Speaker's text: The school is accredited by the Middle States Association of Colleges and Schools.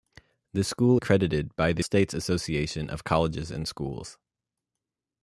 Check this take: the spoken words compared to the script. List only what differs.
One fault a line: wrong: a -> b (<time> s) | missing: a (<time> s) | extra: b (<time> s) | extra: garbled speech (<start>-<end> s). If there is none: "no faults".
missing: is (1.0 s)
missing: Middle (1.8 s)